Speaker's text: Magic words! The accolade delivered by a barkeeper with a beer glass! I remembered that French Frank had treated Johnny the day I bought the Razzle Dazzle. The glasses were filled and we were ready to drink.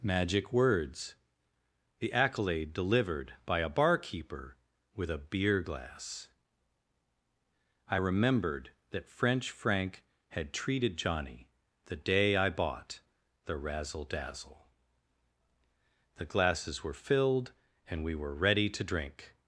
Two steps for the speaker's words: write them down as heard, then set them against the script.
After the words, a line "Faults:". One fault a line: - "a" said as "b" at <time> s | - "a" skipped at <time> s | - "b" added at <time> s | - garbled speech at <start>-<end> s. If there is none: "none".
Magic words! The accolade delivered by a barkeeper with a beer glass! I remembered that French Frank had treated Johnny the day I bought the Razzle Dazzle. The glasses were filled and we were ready to drink.
Faults:
none